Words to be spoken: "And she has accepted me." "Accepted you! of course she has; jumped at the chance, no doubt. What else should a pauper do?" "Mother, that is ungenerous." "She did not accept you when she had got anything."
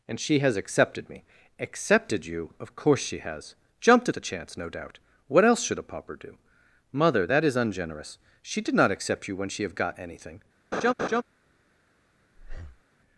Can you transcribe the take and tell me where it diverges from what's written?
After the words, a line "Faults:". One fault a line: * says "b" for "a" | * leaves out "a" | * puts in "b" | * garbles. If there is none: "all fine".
"And she has accepted me." "Accepted you! of course she has; jumped at the chance, no doubt. What else should a pauper do?" "Mother, that is ungenerous." "She did not accept you when she have got anything."
Faults:
* says "have" for "had"